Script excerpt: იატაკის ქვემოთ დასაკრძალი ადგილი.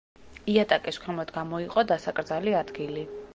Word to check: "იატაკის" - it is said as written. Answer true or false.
true